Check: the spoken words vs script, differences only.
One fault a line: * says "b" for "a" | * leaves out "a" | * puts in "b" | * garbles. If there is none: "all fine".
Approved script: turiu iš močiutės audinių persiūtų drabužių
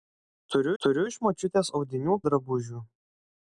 * puts in "turiu"
* leaves out "persiūtų"